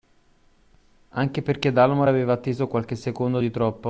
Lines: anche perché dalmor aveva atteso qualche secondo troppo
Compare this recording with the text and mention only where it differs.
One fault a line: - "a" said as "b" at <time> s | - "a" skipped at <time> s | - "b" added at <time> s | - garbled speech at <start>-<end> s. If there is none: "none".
- "di" added at 3.4 s